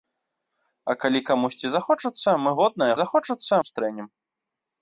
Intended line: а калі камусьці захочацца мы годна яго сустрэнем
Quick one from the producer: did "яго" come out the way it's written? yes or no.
no